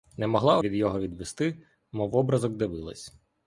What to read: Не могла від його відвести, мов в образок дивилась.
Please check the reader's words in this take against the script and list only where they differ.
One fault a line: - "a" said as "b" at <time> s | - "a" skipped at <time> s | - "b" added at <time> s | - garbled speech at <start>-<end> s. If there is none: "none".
none